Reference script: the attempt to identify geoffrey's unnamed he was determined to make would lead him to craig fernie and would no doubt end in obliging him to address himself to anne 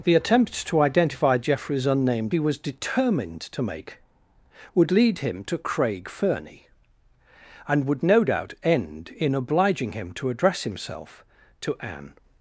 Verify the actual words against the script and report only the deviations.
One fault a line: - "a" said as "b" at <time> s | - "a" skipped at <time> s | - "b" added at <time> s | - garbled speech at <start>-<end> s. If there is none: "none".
none